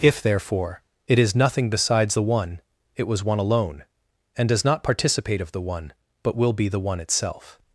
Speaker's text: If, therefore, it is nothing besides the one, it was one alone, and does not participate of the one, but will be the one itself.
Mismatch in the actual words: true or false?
false